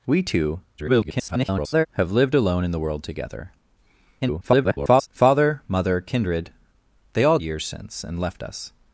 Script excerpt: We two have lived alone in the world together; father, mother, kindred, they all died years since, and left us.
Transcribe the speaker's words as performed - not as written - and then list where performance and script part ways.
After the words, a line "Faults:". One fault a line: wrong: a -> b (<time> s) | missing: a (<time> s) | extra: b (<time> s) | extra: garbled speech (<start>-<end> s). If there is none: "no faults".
We two [garbled] have lived alone in the world together; [garbled] father, mother, kindred, they all years since, and left us.
Faults:
extra: garbled speech (0.8-1.9 s)
extra: garbled speech (4.2-5.1 s)
missing: died (7.4 s)